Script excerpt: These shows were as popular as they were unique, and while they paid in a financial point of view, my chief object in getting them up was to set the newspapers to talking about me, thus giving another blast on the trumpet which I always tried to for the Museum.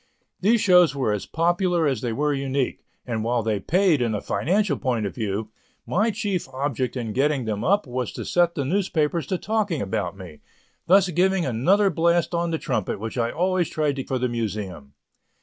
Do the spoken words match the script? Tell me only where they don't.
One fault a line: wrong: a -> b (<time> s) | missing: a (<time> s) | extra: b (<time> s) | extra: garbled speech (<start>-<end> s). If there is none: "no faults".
no faults